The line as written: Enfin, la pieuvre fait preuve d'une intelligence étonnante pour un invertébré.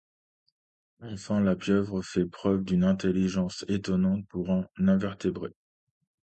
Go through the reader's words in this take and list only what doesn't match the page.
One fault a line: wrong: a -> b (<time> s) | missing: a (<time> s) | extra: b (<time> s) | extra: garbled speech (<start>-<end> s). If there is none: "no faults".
no faults